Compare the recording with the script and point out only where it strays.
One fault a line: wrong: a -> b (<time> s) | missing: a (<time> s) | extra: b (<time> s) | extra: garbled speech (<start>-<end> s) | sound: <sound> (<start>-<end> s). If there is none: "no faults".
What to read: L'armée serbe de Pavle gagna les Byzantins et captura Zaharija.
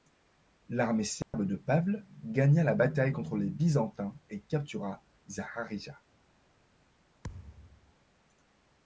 sound: dropout (1.2-1.3 s)
extra: la bataille contre (2.6 s)
sound: thud (7.2-7.9 s)